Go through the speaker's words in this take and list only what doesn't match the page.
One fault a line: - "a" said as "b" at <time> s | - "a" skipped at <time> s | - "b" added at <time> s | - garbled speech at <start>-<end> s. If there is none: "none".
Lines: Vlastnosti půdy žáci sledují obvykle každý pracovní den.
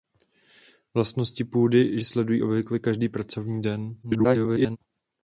- "žáci" skipped at 2.0 s
- garbled speech at 4.0-4.8 s